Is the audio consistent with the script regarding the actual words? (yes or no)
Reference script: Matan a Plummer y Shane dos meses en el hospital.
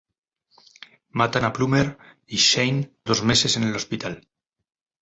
yes